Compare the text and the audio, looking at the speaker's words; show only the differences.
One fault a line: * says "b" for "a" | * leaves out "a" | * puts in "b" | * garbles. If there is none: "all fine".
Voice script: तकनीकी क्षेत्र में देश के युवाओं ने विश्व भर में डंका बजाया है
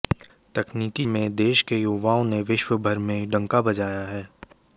* leaves out "क्षेत्र"